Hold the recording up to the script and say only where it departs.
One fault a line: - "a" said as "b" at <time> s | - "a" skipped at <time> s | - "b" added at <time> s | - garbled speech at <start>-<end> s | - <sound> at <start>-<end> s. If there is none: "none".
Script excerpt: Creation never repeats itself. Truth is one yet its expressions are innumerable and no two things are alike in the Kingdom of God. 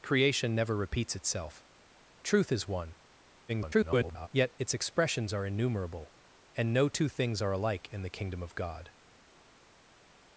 - garbled speech at 3.5-4.3 s